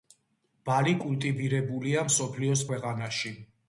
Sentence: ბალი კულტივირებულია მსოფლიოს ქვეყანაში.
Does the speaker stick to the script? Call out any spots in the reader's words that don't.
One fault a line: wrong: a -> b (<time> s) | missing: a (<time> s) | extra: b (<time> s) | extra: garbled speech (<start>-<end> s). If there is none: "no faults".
no faults